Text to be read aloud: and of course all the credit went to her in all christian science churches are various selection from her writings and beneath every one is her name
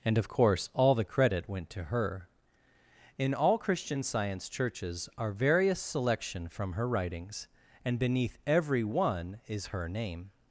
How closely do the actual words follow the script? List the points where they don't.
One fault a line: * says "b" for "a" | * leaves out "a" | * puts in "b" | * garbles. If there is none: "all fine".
all fine